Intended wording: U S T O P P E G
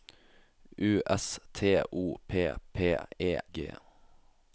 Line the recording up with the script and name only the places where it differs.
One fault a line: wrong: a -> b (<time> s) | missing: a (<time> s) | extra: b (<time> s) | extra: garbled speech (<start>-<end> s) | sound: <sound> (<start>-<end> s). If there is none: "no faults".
no faults